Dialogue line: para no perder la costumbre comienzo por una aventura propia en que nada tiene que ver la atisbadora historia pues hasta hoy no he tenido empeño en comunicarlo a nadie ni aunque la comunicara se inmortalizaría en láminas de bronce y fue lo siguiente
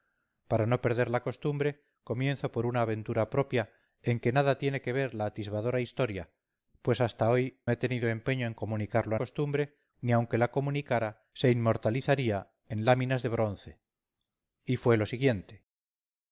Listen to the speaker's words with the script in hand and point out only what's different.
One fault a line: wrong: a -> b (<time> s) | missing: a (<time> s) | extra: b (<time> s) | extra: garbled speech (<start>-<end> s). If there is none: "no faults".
missing: no (7.6 s)
wrong: nadie -> costumbre (9.1 s)